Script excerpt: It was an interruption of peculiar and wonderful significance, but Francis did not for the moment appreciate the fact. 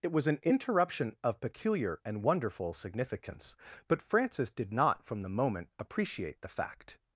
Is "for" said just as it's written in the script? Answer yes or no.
no